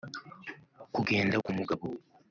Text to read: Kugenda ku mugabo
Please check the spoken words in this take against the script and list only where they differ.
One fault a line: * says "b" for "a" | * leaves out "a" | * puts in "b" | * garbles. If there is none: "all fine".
all fine